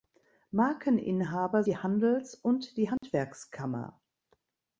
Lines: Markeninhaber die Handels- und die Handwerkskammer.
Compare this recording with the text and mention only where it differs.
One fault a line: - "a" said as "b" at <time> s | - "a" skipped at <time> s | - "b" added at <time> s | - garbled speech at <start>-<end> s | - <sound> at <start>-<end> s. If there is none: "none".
- dropout at 3.0-3.0 s